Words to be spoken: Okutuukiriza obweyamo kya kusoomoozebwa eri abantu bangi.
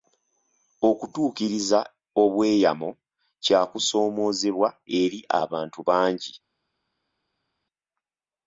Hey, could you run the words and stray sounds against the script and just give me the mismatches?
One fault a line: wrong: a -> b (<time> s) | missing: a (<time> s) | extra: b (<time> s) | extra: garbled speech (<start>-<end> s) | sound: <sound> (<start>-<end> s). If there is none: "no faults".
no faults